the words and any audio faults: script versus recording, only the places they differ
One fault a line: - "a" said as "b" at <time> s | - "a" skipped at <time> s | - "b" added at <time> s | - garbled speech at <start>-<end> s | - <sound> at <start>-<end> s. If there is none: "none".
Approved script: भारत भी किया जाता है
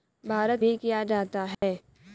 - dropout at 1.5-1.6 s